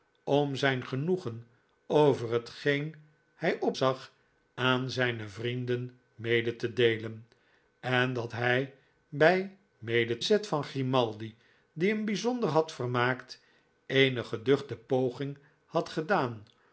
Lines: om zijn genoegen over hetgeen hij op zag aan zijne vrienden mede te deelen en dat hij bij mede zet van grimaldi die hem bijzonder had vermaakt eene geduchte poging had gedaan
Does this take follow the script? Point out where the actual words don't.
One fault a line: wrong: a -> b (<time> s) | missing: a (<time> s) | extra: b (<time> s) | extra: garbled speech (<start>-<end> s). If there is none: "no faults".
no faults